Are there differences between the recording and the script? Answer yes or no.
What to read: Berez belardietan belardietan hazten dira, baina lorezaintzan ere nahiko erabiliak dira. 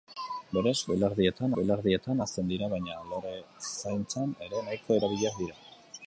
no